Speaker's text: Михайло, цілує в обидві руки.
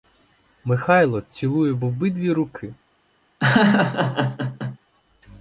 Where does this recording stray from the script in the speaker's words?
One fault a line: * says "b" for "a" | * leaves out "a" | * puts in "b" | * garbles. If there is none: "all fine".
all fine